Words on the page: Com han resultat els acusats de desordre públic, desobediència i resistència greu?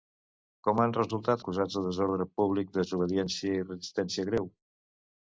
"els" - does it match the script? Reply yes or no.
no